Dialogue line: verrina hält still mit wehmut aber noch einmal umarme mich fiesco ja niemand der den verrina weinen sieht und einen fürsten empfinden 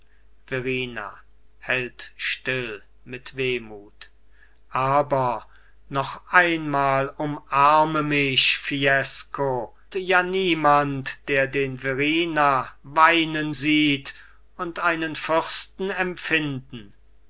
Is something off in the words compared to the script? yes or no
no